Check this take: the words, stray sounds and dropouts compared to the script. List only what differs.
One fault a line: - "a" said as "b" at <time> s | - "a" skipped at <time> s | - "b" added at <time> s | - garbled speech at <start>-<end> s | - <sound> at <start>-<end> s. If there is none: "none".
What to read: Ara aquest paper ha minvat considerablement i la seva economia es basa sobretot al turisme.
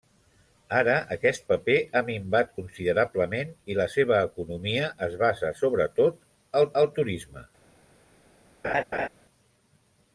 - "al" added at 6.8 s
- laugh at 8.6-9.1 s